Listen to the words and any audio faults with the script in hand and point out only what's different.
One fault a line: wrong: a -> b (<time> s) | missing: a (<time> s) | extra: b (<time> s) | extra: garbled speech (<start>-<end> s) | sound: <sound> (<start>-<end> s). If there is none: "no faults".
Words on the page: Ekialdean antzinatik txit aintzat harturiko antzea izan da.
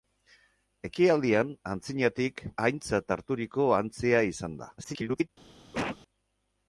missing: txit (2.4 s)
extra: garbled speech (4.8-5.3 s)
sound: cough (5.7-6.0 s)